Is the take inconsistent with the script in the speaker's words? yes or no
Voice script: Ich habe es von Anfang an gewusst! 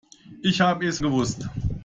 yes